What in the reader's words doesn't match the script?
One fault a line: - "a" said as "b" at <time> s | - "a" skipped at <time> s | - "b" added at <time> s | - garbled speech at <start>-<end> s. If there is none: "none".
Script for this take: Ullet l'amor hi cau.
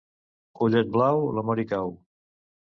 - "blau" added at 0.9 s